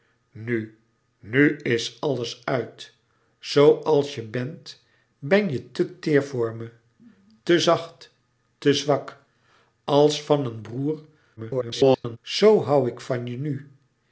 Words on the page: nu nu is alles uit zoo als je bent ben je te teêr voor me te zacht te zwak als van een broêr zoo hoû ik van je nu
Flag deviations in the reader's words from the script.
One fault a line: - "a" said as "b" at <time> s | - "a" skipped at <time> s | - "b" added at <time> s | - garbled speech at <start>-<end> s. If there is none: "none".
- garbled speech at 11.4-12.2 s